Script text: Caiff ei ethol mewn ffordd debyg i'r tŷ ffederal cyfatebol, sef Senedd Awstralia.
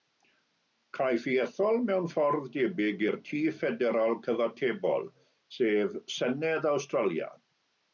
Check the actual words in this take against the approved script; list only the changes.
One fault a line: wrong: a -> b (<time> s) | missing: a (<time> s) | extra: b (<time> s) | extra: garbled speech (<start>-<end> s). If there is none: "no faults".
no faults